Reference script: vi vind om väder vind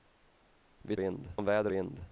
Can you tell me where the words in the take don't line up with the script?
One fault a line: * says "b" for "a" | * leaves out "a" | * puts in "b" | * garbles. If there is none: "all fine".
all fine